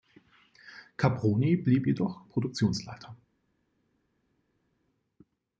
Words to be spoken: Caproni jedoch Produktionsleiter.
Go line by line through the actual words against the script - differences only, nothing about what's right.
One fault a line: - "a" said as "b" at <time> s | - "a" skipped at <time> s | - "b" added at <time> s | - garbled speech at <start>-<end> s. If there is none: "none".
- "blieb" added at 1.6 s